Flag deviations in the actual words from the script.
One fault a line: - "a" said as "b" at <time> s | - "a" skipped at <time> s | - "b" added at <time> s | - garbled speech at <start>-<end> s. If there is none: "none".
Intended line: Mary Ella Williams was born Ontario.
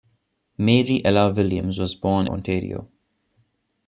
none